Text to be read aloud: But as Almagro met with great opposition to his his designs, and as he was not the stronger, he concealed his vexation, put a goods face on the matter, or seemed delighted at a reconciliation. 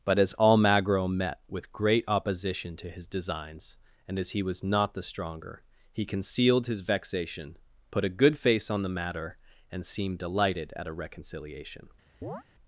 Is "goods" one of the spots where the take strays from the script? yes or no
yes